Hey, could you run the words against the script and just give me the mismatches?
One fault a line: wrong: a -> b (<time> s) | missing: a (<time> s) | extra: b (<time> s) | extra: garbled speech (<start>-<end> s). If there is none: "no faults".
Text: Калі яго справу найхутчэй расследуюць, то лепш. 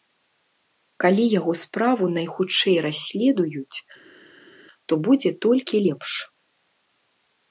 extra: будзе толькі (5.1 s)